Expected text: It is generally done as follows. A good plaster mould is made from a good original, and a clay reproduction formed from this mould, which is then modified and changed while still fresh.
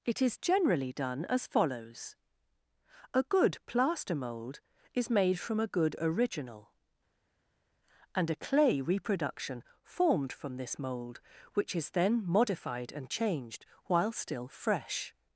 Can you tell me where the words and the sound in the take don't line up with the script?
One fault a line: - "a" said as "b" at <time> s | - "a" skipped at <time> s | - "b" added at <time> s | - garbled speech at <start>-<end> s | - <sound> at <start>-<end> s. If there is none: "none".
none